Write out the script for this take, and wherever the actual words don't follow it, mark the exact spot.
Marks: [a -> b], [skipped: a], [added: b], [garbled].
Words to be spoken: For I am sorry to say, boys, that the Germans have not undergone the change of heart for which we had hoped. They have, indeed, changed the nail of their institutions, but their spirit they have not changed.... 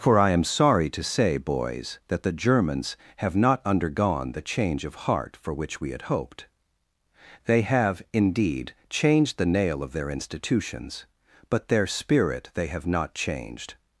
For I am sorry to say, boys, that the Germans have not undergone the change of heart for which we had hoped. They have, indeed, changed the nail of their institutions, but their spirit they have not changed....